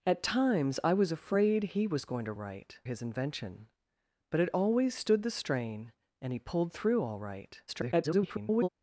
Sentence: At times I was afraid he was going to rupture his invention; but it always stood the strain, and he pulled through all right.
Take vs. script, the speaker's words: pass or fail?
fail